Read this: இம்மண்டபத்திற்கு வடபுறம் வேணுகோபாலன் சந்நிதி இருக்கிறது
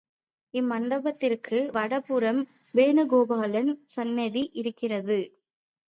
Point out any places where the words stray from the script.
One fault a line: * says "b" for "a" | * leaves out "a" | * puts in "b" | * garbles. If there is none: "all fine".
all fine